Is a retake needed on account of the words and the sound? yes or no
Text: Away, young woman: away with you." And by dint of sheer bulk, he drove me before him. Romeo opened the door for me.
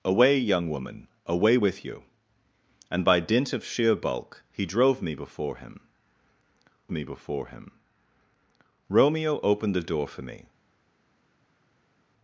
yes